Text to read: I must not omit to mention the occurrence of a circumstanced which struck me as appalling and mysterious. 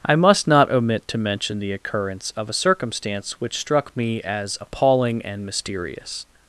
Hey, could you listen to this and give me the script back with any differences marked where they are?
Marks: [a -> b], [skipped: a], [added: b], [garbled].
I must not omit to mention the occurrence of a [circumstanced -> circumstance] which struck me as appalling and mysterious.